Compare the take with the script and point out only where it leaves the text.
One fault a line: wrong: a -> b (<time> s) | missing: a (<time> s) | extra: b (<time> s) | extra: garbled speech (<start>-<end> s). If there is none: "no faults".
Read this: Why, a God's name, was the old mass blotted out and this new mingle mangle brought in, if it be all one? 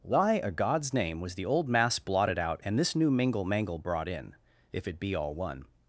no faults